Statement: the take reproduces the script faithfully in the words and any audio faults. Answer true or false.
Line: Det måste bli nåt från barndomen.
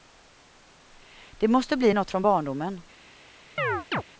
false